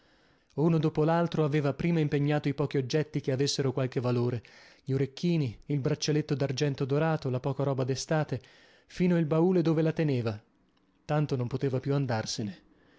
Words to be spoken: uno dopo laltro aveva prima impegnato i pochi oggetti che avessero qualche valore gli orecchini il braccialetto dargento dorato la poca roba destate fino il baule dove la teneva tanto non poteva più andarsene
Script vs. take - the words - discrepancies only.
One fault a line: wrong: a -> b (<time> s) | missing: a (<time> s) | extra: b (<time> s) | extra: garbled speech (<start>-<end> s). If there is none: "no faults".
no faults